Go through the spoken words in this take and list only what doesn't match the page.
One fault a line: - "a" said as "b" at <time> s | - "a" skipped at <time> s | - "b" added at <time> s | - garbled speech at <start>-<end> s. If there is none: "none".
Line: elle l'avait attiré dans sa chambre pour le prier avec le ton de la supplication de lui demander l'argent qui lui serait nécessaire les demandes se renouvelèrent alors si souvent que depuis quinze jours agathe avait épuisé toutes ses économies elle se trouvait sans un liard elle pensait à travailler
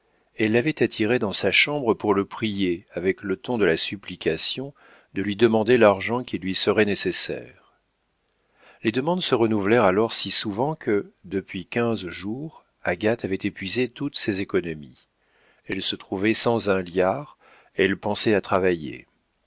none